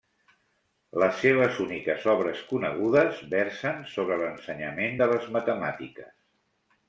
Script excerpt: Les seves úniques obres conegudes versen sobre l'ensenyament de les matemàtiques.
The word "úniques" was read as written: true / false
true